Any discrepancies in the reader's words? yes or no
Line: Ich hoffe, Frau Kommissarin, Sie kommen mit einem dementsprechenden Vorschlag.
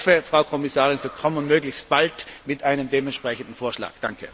yes